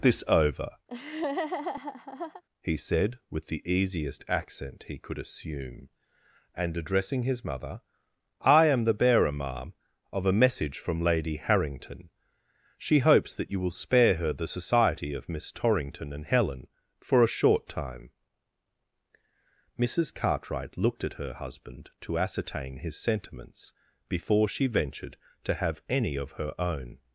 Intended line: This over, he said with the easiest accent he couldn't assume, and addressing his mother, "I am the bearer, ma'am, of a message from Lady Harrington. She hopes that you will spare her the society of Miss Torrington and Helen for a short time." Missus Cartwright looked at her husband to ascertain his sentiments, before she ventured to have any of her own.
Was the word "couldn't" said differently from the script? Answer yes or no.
yes